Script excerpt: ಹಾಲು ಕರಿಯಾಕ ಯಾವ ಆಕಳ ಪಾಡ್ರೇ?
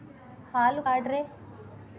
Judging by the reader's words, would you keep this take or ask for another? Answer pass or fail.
fail